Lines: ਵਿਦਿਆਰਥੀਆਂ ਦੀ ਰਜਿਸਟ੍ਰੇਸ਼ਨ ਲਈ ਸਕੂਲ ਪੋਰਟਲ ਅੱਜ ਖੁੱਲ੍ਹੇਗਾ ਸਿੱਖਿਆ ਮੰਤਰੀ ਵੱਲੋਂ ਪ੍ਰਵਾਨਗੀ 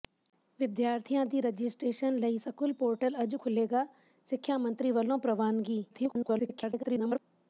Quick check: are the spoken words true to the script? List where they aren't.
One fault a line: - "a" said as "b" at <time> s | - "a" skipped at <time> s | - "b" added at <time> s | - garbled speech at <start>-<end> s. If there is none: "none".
- garbled speech at 5.9-7.2 s